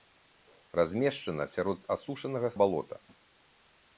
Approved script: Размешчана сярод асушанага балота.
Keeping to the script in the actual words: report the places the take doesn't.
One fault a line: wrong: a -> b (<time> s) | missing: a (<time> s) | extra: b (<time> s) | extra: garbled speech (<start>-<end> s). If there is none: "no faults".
no faults